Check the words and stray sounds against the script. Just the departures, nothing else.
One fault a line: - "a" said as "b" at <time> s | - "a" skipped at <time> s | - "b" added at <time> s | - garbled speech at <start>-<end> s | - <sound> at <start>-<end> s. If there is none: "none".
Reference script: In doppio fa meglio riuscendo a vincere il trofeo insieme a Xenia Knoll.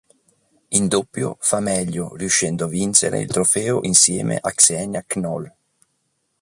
none